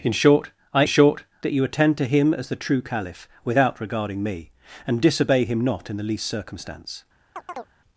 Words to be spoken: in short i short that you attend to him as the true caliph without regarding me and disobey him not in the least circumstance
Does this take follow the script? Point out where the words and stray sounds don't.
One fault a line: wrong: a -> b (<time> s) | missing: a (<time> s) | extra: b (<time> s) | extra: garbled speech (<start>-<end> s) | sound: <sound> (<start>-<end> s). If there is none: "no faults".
sound: chirp (7.4-7.7 s)